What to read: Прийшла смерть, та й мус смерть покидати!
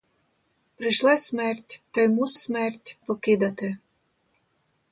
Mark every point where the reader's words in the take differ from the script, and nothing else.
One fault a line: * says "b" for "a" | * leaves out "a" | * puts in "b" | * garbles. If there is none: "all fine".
all fine